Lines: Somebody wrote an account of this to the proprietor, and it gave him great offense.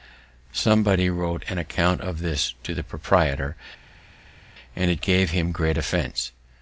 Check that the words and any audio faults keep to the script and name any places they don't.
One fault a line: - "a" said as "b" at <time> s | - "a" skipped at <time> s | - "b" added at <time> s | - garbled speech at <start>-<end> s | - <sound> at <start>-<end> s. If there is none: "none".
none